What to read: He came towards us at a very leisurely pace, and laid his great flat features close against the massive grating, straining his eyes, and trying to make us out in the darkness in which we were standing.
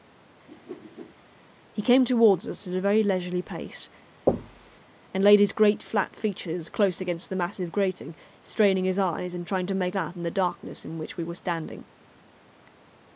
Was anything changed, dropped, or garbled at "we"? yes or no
no